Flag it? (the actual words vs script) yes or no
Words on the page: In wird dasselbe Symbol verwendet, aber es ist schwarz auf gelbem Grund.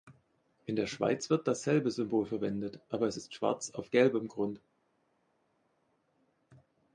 yes